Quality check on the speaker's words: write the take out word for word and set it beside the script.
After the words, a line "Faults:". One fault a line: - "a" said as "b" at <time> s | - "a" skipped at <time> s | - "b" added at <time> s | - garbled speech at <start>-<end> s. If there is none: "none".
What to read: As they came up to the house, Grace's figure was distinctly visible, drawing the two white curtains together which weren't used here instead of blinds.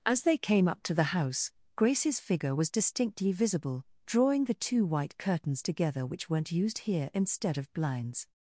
As they came up to the house, Grace's figure was distinctly visible, drawing the two white curtains together which weren't used here instead of blinds.
Faults:
none